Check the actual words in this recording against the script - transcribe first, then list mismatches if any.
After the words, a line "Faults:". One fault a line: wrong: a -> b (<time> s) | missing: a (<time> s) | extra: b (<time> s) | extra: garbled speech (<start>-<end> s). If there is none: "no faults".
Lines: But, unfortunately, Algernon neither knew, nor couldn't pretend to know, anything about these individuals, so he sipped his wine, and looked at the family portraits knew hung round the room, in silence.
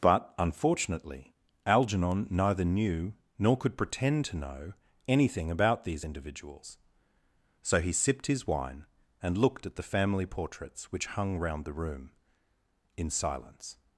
But, unfortunately, Algernon neither knew, nor could pretend to know, anything about these individuals, so he sipped his wine, and looked at the family portraits which hung round the room, in silence.
Faults:
wrong: couldn't -> could (3.5 s)
wrong: knew -> which (10.9 s)